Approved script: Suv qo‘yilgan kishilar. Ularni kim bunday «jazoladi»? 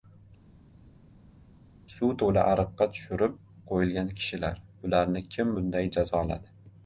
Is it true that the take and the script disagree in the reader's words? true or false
true